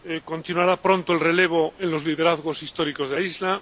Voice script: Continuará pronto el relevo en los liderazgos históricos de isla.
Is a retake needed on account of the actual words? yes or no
no